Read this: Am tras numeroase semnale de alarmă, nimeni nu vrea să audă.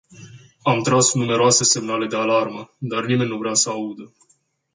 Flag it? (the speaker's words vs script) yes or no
yes